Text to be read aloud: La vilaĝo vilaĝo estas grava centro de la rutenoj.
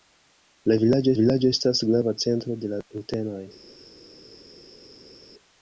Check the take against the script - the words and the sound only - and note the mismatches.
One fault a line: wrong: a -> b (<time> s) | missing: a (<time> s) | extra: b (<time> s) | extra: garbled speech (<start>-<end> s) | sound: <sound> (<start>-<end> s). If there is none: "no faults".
no faults